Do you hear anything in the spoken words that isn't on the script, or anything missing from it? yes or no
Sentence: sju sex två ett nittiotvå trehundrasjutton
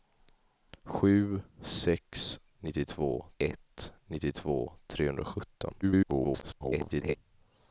yes